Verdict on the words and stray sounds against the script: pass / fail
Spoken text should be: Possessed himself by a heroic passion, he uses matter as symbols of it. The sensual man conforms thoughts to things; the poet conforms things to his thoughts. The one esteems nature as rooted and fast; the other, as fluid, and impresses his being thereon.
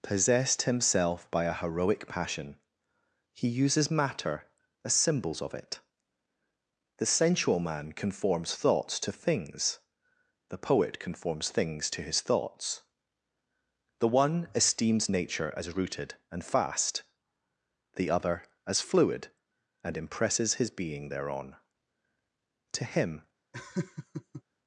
fail